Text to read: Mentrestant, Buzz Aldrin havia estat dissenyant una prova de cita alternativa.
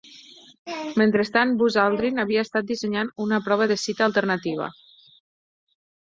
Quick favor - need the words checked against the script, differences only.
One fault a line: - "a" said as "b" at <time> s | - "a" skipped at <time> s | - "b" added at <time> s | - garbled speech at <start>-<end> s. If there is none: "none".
none